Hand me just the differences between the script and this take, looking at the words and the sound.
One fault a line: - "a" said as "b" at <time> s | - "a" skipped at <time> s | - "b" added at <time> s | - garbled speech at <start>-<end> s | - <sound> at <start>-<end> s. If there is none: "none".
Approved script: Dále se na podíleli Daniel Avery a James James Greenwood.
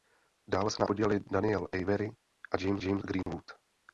- dropout at 3.2-3.3 s